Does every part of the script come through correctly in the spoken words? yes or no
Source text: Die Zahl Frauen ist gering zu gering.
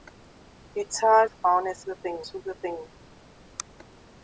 yes